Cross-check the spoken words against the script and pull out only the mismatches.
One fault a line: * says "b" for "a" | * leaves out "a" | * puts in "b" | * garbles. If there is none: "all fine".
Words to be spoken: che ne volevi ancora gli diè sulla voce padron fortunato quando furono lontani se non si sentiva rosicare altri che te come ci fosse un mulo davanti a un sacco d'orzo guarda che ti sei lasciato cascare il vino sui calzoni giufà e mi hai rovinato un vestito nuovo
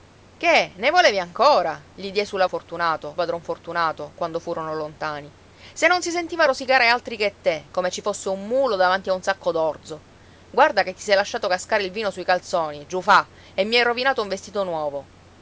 * says "fortunato" for "voce"